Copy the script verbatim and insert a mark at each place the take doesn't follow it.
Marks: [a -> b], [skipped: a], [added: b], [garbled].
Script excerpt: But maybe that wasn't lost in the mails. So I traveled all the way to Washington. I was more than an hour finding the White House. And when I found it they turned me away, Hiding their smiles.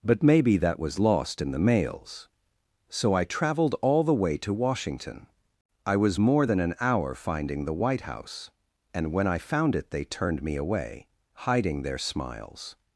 But maybe that [wasn't -> was] lost in the mails. So I traveled all the way to Washington. I was more than an hour finding the White House. And when I found it they turned me away, Hiding their smiles.